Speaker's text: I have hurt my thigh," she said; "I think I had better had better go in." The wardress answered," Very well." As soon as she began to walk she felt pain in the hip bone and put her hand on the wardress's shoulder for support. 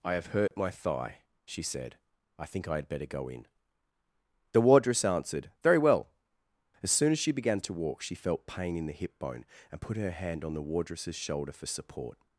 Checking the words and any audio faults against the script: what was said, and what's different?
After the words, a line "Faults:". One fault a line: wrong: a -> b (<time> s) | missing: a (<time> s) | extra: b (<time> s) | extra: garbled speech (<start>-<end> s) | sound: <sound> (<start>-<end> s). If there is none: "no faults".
I have hurt my thigh," she said; "I think I had better go in." The wardress answered," Very well." As soon as she began to walk she felt pain in the hip bone and put her hand on the wardress's shoulder for support.
Faults:
sound: dropout (0.5-0.5 s)
missing: had better (3.0 s)